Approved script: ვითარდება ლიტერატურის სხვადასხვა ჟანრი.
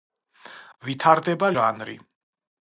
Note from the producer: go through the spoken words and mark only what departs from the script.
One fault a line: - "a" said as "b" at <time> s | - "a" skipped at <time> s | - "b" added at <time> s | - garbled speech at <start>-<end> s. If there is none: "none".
- "ლიტერატურის სხვადასხვა" skipped at 1.5 s